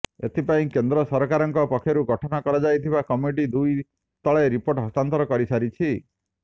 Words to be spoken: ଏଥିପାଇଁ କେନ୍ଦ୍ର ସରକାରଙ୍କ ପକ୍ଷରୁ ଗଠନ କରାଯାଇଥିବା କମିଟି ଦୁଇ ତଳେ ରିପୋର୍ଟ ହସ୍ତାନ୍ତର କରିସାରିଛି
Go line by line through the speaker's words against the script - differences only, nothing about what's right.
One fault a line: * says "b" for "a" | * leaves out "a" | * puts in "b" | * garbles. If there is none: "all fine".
all fine